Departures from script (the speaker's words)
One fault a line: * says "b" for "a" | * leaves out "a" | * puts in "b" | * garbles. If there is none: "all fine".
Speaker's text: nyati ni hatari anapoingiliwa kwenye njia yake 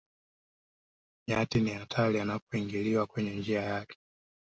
all fine